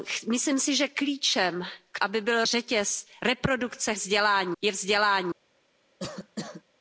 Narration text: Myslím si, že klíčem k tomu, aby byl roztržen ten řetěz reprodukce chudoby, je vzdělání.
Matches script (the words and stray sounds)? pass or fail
fail